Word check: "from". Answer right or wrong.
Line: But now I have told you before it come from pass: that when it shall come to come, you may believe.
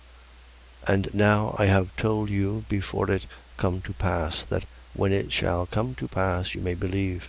wrong